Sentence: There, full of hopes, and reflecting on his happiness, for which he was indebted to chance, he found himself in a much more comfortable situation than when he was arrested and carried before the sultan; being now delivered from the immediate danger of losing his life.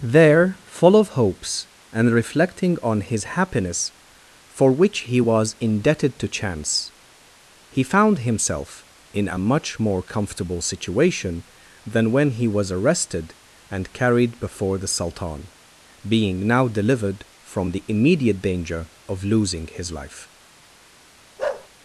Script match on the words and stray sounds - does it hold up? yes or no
no